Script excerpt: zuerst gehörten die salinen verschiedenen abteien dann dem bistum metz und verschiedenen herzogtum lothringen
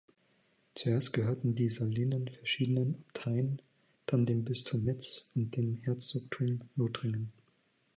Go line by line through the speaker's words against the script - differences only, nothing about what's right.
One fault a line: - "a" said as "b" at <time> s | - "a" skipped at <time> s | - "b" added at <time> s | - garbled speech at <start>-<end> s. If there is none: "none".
- "verschiedenen" said as "dem" at 5.6 s